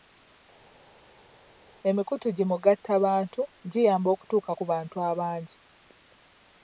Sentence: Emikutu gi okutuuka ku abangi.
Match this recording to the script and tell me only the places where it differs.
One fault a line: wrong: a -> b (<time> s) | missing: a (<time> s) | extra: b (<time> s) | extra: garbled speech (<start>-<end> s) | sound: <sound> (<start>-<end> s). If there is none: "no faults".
extra: mugattabantu giyamba (2.5 s)
extra: bantu (4.7 s)